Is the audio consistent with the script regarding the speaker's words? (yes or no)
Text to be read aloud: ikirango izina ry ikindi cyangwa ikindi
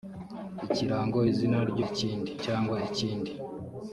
yes